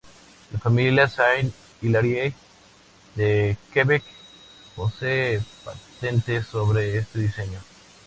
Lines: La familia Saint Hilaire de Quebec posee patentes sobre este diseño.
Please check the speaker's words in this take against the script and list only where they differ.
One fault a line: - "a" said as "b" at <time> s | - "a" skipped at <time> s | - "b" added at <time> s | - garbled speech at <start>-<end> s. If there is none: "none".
none